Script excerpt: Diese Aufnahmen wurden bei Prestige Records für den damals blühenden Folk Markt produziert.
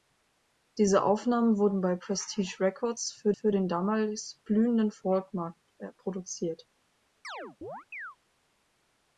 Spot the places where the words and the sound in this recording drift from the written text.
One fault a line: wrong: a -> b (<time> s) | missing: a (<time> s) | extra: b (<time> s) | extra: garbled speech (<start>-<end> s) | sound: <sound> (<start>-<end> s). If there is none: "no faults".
extra: für (3.3 s)
sound: chirp (7.2-8.2 s)